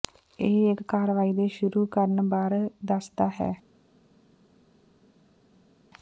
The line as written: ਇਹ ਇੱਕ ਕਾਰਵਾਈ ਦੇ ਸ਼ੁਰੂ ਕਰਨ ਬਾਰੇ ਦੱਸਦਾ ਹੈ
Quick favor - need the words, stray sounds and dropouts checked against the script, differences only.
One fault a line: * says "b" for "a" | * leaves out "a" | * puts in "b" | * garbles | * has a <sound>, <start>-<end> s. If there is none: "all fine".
all fine